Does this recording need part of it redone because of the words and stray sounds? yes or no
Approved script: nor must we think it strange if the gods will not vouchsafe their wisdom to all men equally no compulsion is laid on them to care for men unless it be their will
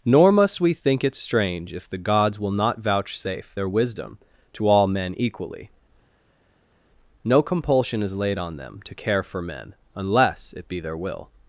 no